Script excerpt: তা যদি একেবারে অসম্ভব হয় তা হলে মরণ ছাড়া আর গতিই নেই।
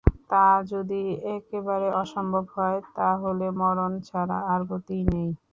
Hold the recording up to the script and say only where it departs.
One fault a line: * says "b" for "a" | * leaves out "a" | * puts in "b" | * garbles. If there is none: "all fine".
all fine